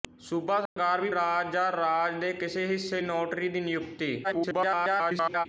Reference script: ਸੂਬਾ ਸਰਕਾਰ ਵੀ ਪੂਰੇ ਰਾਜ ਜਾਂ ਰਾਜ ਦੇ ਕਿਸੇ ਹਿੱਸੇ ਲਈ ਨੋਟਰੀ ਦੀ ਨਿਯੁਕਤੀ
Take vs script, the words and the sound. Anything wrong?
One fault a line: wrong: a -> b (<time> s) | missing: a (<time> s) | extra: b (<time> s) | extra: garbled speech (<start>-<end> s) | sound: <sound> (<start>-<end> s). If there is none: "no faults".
sound: dropout (0.7-0.8 s)
missing: ਪੂਰੇ (1.1 s)
missing: ਲਈ (3.0 s)
extra: garbled speech (4.2-5.5 s)